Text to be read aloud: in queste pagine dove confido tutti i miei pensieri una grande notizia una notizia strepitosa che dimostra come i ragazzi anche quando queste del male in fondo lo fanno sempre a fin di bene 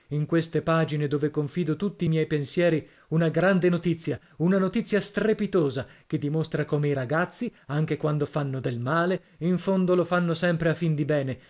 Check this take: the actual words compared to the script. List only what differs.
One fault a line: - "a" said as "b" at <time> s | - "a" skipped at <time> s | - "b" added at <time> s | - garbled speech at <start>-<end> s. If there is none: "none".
- "queste" said as "fanno" at 8.2 s